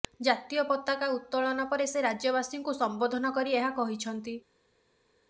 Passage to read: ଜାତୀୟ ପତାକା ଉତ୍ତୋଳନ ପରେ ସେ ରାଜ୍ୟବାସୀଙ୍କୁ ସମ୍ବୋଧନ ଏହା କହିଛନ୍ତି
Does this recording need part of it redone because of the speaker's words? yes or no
yes